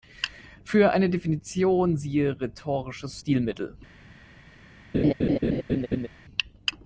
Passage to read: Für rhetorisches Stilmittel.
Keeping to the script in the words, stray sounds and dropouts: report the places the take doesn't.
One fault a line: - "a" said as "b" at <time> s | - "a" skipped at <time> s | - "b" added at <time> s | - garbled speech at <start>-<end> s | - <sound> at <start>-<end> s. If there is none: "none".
- "eine Definition siehe" added at 0.9 s
- laugh at 4.9-6.1 s